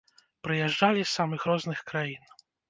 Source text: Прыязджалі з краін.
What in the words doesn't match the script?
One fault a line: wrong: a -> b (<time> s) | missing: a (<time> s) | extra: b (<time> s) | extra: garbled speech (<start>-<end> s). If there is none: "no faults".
extra: самых розных (1.2 s)